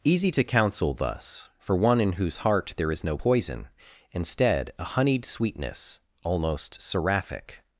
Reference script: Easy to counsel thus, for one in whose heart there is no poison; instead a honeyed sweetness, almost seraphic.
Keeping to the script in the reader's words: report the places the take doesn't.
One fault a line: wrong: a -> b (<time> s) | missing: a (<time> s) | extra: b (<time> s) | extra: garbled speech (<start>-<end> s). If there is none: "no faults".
no faults